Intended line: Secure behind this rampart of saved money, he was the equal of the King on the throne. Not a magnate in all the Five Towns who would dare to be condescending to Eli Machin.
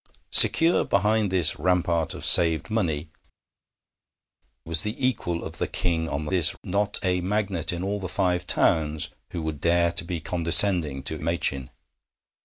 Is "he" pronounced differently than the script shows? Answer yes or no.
yes